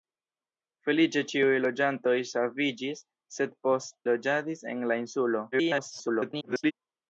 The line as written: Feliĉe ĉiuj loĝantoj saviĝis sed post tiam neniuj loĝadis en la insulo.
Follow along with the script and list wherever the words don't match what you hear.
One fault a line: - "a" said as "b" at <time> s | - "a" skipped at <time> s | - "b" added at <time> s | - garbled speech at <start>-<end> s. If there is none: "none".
- "tiam neniuj" skipped at 4.0 s
- garbled speech at 5.5-6.7 s